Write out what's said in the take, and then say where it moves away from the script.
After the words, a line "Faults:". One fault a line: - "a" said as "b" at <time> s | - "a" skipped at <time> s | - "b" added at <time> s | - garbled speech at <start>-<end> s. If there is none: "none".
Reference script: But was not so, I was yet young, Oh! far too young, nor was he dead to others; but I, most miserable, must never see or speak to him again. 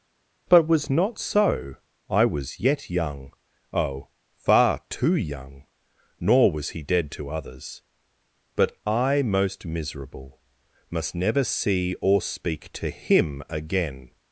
But was not so, I was yet young, Oh! far too young, nor was he dead to others; but I, most miserable, must never see or speak to him again.
Faults:
none